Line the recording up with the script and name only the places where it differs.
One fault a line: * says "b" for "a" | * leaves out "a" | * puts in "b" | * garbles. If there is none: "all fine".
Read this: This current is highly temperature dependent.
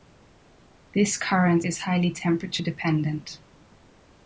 all fine